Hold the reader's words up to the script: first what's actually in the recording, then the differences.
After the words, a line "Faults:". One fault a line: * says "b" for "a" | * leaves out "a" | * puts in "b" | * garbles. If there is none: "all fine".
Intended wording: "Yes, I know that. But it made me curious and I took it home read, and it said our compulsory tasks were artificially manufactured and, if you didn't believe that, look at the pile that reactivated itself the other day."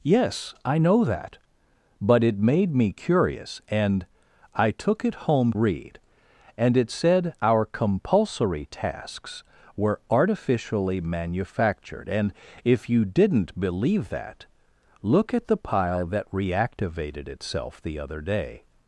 "Yes, I know that. But it made me curious and I took it home read, and it said our compulsory tasks were artificially manufactured and, if you didn't believe that, look at the pile that reactivated itself the other day."
Faults:
all fine